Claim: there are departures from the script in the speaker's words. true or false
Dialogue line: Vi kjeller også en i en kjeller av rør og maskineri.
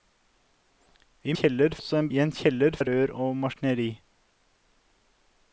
false